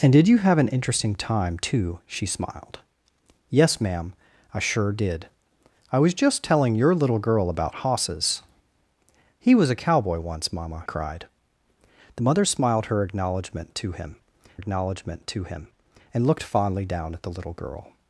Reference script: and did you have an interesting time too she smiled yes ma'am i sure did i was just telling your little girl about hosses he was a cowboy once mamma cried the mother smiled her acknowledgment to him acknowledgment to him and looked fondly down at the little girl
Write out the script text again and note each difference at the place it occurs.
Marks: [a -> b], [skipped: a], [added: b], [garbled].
and did you have an interesting time too she smiled yes ma'am i sure did i was just telling your little girl about hosses he was a cowboy once mamma cried the mother smiled her acknowledgment to him acknowledgment to him and looked fondly down at the little girl